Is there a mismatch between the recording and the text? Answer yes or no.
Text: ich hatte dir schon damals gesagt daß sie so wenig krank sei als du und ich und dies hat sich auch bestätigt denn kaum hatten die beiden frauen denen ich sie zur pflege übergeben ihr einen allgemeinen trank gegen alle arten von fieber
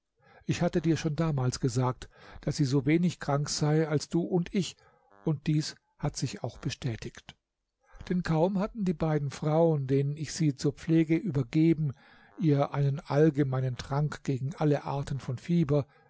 no